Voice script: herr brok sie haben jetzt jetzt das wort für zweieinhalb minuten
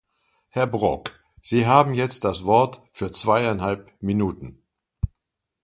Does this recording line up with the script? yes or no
no